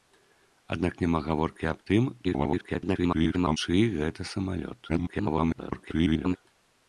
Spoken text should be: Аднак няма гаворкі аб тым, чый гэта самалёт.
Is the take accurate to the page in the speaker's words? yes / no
no